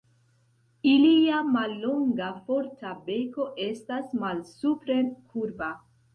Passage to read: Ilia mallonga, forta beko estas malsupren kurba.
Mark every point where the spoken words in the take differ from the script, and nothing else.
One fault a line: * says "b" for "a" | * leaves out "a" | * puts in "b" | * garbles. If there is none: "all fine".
all fine